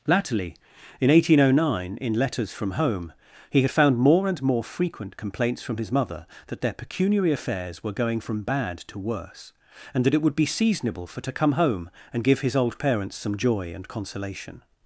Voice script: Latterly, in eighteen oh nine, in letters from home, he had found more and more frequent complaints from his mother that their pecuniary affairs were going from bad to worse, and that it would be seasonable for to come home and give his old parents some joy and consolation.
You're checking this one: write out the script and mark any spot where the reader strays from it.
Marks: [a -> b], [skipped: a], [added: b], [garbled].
Latterly, in eighteen oh nine, in letters from home, he had found more and more frequent complaints from his mother that their pecuniary affairs were going from bad to worse, and that it would be seasonable for to come home and give his old parents some joy and consolation.